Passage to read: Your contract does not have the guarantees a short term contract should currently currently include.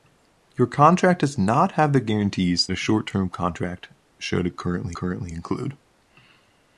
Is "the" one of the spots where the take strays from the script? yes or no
no